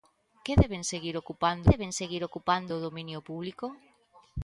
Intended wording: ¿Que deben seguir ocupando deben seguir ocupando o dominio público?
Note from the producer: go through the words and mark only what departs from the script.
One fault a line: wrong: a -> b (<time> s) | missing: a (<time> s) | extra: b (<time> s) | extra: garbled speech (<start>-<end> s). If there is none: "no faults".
no faults